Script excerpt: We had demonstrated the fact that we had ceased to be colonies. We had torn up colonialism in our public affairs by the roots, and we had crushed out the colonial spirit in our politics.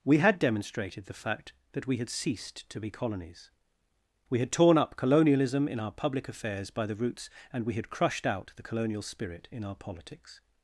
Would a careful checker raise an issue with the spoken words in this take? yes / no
no